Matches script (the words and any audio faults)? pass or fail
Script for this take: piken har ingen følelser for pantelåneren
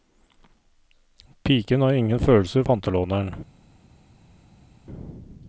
fail